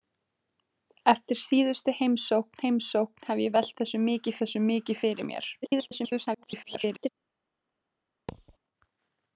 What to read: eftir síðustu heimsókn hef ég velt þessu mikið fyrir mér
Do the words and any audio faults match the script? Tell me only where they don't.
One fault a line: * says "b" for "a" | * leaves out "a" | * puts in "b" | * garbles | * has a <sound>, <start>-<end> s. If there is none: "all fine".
* puts in "heimsókn"
* puts in "þessu mikið"
* garbles
* has a thud, 8.3-8.6 s